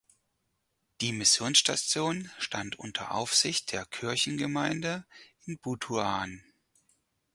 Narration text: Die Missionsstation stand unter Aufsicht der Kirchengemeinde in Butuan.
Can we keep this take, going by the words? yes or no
yes